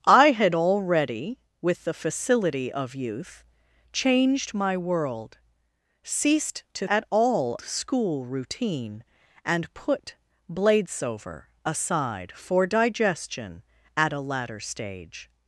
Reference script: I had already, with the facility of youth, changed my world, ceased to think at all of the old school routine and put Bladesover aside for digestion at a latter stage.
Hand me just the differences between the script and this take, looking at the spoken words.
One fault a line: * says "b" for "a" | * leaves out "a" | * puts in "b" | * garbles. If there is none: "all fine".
* leaves out "think"
* leaves out "of the old"